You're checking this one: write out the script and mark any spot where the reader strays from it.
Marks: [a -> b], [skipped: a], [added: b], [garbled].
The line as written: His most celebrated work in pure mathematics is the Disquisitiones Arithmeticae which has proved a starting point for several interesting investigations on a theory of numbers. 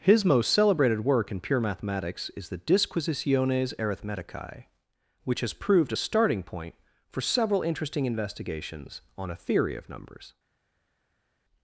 His most celebrated work in pure mathematics is the Disquisitiones Arithmeticae which has proved a starting point for several interesting investigations on a theory of numbers.